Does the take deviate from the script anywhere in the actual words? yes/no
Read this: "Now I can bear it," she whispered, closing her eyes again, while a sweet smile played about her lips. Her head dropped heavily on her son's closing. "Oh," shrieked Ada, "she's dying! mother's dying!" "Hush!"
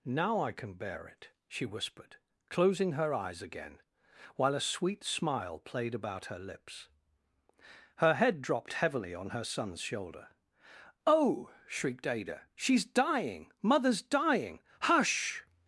yes